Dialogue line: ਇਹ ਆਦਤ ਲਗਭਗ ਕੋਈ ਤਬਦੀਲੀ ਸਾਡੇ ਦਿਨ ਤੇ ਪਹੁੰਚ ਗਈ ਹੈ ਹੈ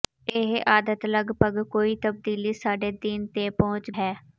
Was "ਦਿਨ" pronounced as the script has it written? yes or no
yes